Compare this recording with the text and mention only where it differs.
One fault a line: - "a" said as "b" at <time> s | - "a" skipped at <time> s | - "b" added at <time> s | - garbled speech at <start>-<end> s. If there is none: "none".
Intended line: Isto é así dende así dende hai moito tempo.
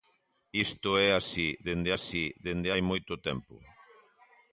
none